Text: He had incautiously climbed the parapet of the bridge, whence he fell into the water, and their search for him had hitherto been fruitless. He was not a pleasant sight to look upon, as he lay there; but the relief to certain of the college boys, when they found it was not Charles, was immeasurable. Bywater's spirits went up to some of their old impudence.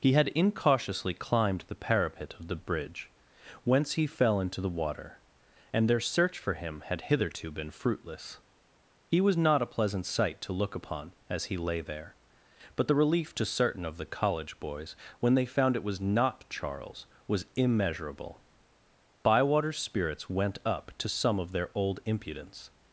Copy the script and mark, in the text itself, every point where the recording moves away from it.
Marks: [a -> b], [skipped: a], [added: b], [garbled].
He had incautiously climbed the parapet of the bridge, whence he fell into the water, and their search for him had hitherto been fruitless. He was not a pleasant sight to look upon, as he lay there; but the relief to certain of the college boys, when they found it was not Charles, was immeasurable. Bywater's spirits went up to some of their old impudence.